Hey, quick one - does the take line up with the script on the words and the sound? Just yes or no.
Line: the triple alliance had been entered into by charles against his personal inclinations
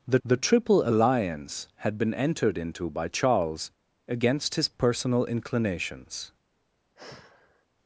no